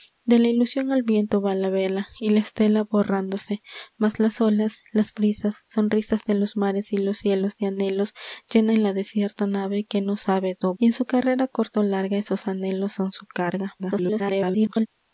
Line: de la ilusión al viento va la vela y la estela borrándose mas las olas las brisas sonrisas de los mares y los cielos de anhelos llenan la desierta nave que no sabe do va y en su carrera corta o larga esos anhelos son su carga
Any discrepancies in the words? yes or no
yes